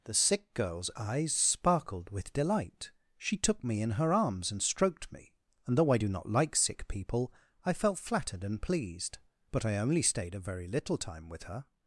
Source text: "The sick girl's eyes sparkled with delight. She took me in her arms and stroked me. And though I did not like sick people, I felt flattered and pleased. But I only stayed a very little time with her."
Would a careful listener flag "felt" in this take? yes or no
no